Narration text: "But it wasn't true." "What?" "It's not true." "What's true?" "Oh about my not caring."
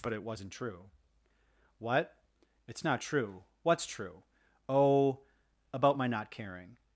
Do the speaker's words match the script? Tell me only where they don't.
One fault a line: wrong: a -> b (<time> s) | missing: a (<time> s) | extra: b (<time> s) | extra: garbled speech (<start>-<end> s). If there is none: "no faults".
no faults